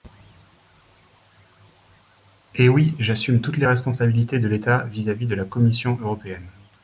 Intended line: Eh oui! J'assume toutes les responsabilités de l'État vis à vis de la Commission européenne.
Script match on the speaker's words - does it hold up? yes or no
yes